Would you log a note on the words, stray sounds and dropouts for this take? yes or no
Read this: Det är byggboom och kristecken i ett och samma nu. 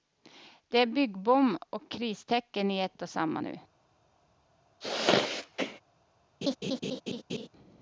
yes